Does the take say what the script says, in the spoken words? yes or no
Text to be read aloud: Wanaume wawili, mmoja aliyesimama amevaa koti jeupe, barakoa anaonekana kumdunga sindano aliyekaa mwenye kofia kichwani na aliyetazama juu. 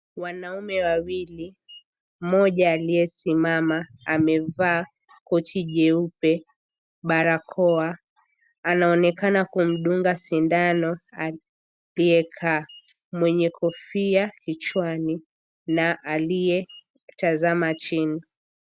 no